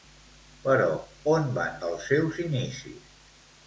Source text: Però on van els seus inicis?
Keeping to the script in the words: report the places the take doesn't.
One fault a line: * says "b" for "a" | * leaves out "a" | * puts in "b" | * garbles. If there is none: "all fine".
all fine